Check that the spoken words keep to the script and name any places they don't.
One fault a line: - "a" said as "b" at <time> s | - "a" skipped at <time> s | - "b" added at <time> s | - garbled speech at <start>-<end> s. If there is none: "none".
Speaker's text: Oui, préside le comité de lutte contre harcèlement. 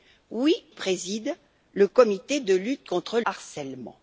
none